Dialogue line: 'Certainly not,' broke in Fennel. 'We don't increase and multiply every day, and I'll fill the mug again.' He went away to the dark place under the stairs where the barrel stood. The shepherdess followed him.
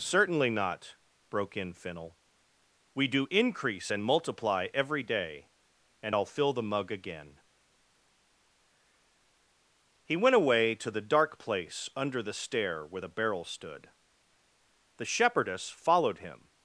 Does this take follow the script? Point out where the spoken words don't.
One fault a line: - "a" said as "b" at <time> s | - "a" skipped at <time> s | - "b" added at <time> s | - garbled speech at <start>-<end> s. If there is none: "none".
- "don't" said as "do" at 3.1 s
- "stairs" said as "stair" at 12.3 s